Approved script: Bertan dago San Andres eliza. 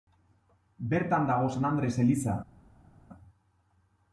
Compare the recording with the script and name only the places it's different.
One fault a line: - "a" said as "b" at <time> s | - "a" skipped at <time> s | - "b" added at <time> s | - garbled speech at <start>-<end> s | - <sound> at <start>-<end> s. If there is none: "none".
none